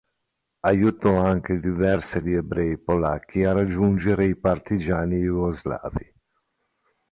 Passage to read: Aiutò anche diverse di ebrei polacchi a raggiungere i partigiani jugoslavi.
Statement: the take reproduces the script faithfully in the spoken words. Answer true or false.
true